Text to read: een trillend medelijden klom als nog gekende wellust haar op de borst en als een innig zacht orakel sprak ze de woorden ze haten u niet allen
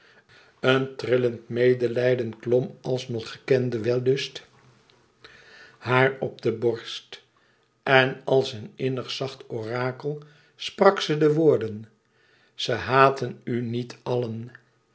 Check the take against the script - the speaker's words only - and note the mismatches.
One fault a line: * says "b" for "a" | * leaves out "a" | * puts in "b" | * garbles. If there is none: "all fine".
all fine